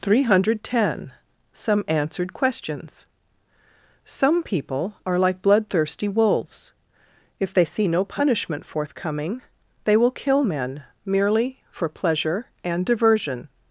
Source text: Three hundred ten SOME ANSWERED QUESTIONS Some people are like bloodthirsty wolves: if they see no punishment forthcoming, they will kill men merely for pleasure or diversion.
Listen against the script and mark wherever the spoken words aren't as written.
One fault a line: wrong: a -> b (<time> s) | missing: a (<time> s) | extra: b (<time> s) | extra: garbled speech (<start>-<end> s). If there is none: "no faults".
wrong: or -> and (12.6 s)